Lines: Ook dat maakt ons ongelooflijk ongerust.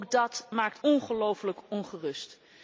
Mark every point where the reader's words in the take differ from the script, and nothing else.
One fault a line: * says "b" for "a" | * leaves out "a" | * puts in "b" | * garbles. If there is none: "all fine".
* leaves out "ons"